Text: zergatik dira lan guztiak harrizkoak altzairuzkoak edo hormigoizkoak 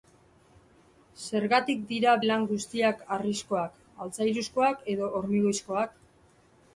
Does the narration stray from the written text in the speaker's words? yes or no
no